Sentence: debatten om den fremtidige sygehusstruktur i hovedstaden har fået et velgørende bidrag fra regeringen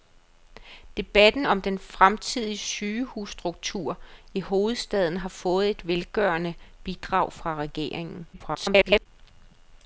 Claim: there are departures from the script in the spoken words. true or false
true